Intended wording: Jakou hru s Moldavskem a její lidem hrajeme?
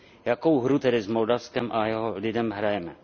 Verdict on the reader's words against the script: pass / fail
fail